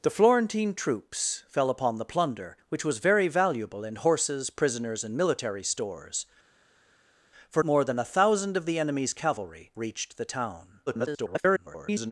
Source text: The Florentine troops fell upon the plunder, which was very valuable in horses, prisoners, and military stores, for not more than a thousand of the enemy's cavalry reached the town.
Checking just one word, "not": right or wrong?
wrong